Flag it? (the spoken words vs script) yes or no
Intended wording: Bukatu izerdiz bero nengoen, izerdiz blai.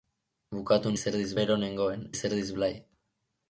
no